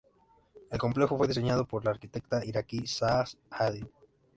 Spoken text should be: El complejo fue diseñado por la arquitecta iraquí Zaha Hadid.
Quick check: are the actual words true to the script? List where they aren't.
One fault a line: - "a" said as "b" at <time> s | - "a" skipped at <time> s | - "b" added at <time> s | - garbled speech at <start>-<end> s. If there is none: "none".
none